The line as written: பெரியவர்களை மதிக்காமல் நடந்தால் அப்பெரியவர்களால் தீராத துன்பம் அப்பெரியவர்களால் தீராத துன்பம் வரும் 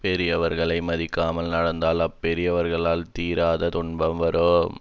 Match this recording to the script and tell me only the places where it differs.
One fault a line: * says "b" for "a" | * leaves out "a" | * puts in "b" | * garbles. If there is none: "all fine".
* leaves out "அப்பெரியவர்களால் தீராத துன்பம்"